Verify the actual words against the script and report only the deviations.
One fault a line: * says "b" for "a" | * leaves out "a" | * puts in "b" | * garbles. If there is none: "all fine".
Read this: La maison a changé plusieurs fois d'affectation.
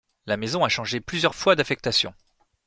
all fine